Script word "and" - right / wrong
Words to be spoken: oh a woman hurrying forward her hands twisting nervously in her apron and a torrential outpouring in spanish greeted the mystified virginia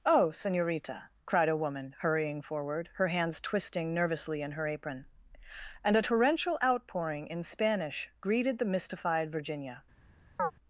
right